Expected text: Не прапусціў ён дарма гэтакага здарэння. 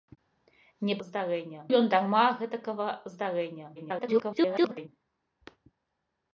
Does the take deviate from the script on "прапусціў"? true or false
true